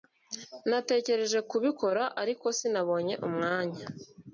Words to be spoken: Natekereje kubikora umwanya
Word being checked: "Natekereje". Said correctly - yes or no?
yes